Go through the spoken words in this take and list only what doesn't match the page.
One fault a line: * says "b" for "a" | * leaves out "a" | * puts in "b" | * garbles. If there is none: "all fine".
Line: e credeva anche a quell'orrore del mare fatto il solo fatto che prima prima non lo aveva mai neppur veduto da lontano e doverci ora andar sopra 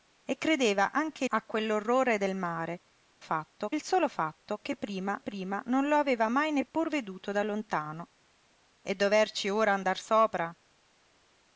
all fine